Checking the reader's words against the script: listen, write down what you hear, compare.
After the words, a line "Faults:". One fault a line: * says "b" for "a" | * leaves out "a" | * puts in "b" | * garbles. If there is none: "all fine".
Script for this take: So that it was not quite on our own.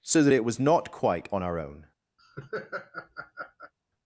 So that it was not quite on our own.
Faults:
all fine